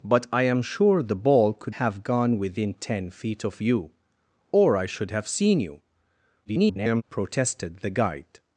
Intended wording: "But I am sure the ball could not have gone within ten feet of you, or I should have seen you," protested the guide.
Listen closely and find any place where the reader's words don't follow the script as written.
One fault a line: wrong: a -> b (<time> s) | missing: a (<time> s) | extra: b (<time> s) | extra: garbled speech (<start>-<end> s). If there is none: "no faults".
missing: not (1.8 s)
extra: garbled speech (6.4-7.0 s)